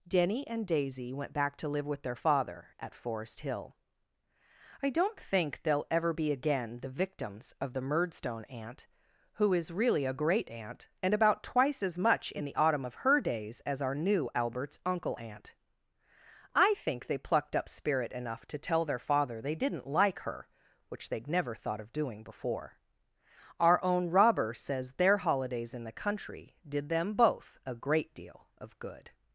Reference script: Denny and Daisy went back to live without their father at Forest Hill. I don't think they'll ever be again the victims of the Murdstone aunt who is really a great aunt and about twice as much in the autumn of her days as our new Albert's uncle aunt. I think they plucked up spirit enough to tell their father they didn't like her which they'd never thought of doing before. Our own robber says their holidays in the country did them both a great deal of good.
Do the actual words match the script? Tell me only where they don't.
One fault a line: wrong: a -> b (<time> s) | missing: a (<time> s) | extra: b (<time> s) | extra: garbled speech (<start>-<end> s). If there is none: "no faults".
wrong: without -> with (1.9 s)